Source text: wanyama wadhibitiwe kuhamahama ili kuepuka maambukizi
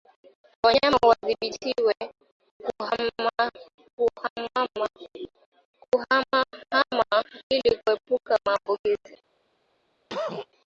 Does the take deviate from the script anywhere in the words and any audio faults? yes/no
yes